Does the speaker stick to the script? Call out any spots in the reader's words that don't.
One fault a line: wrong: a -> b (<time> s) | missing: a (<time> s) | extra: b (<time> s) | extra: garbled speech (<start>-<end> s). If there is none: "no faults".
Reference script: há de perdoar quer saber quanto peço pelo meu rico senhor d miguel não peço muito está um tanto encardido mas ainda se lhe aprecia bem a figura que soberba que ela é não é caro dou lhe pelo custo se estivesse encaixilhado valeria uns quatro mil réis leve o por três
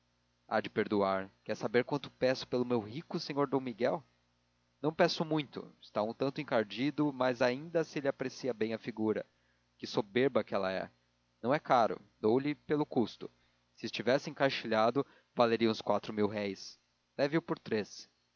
no faults